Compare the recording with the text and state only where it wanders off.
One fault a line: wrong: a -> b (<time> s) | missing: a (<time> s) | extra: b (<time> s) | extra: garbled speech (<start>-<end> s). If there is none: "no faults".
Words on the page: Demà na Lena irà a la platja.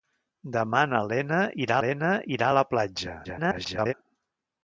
extra: Lena irà (1.8 s)
extra: garbled speech (3.2-3.9 s)